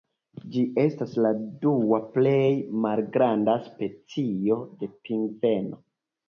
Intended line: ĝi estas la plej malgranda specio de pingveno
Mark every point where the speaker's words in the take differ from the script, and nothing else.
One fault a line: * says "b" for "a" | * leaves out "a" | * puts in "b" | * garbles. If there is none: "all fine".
* puts in "dua"